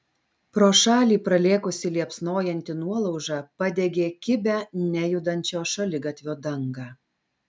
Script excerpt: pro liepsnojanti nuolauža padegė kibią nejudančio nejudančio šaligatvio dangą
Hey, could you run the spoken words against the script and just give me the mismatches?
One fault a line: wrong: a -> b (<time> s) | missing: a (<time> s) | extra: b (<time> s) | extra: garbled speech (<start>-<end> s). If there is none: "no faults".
extra: šalį pralėkusi (0.8 s)
missing: nejudančio (5.6 s)